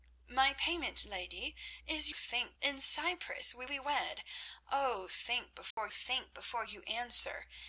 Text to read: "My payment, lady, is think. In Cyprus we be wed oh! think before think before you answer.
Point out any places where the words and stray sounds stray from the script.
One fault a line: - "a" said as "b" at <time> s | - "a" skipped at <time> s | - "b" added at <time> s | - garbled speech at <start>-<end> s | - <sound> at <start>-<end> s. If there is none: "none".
- dropout at 5.7-5.8 s